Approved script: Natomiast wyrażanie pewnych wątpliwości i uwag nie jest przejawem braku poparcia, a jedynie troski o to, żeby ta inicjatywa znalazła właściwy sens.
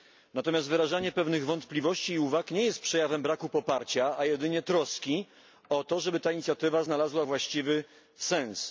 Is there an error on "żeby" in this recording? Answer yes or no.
no